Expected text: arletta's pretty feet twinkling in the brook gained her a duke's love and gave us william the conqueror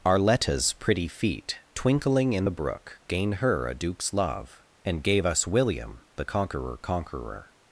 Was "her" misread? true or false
false